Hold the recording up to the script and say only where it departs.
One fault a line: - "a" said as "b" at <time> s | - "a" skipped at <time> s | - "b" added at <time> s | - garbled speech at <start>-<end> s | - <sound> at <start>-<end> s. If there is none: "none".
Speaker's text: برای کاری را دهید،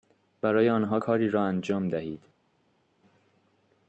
- "آنها" added at 0.7 s
- "انجام" added at 1.4 s